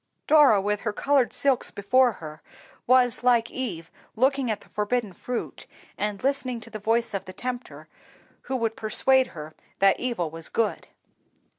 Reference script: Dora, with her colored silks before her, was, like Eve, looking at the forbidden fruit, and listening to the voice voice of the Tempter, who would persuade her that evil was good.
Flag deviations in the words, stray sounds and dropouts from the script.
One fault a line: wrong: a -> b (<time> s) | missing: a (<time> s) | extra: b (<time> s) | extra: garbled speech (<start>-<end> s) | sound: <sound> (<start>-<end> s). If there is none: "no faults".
missing: voice (7.1 s)